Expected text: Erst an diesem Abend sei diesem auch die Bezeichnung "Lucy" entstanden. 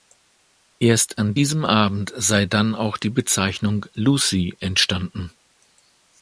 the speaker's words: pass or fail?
fail